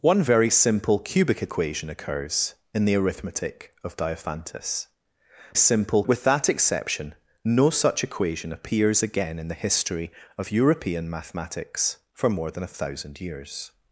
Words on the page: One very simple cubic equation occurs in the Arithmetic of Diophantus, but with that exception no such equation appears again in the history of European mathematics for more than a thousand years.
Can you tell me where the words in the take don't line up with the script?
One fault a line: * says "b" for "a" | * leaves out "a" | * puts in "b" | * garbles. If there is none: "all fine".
* says "simple" for "but"